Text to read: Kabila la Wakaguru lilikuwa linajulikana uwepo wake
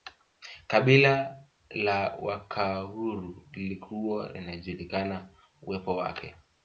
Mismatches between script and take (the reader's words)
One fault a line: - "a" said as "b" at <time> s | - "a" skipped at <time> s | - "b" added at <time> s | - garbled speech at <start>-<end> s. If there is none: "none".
none